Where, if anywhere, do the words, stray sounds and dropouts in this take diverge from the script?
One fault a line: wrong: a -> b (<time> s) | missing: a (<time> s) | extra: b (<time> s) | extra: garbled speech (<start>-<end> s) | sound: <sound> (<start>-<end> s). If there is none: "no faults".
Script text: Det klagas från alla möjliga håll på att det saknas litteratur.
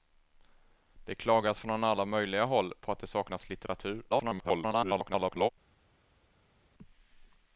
extra: garbled speech (4.1-5.5 s)